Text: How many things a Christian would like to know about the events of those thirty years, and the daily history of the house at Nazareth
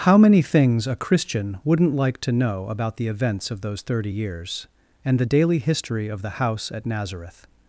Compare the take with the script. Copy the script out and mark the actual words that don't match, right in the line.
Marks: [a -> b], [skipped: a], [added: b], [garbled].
How many things a Christian [would -> wouldn't] like to know about the events of those thirty years, and the daily history of the house at Nazareth